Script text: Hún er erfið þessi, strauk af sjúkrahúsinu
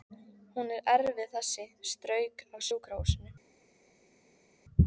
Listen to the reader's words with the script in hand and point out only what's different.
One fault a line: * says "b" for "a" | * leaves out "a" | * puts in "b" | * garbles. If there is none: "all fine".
all fine